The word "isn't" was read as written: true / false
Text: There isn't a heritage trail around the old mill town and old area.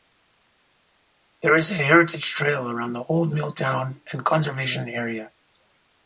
false